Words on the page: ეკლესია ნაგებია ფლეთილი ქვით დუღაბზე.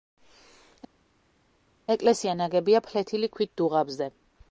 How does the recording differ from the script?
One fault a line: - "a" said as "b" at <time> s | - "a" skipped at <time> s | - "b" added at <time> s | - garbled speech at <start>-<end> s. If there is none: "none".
none